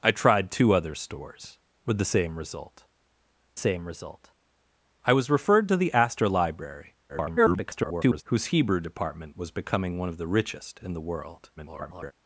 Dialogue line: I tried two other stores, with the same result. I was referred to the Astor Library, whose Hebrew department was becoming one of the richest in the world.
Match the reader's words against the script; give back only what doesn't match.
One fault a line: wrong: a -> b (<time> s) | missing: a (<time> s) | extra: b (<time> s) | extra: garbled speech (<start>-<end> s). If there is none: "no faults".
extra: same result (3.5 s)
extra: garbled speech (7.1-8.2 s)
extra: garbled speech (11.6-12.1 s)